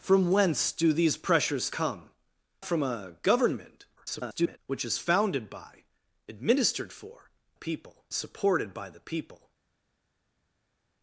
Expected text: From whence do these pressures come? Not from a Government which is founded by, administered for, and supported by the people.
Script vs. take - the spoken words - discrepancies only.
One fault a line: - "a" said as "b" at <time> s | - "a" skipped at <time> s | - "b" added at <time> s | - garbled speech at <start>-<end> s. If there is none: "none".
- "Not" skipped at 2.1 s
- garbled speech at 4.0-4.6 s
- "and" said as "people" at 7.5 s